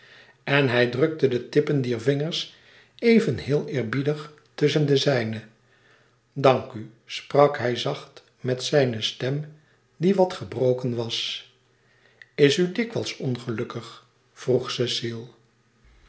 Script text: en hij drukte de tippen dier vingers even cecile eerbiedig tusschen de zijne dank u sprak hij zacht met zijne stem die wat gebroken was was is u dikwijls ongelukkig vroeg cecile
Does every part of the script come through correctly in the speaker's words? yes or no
no